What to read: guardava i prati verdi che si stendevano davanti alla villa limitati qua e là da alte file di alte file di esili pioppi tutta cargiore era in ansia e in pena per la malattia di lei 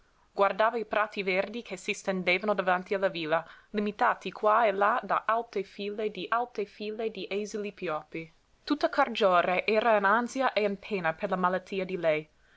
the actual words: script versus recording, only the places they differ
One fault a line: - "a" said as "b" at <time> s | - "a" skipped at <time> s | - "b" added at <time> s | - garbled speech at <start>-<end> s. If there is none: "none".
none